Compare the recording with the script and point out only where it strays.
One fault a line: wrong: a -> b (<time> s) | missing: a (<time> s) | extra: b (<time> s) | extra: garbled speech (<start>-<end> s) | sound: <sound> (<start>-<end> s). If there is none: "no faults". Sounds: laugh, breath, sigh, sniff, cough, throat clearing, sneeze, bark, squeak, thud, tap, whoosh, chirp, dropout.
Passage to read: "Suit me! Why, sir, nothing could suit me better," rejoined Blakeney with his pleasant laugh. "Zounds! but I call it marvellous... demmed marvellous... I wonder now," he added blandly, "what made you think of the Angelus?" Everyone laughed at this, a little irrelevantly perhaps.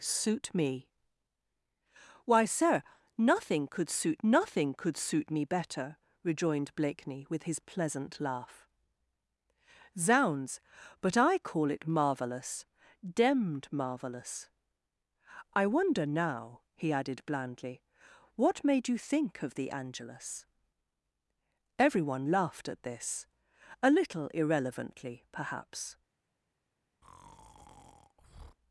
extra: nothing could suit (4.2 s)
sound: breath (27.0-28.6 s)